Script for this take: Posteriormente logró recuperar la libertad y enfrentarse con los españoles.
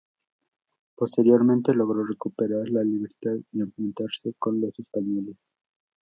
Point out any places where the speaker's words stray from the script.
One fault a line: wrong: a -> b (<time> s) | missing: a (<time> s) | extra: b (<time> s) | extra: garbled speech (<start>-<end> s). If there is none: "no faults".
no faults